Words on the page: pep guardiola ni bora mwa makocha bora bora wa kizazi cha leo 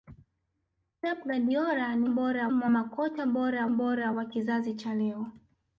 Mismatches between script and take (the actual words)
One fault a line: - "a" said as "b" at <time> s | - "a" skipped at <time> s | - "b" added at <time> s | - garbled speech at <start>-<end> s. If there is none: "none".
none